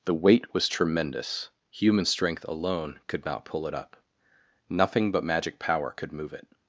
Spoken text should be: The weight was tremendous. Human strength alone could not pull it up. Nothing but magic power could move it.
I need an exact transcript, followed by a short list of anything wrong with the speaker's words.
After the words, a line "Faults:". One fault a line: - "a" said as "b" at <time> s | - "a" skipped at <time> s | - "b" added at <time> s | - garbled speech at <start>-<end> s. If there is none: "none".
The weight was tremendous. Human strength alone could not pull it up. Nothing but magic power could move it.
Faults:
none